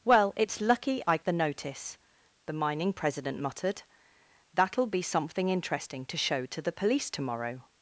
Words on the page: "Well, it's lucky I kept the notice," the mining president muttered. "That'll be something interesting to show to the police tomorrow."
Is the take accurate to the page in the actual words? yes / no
no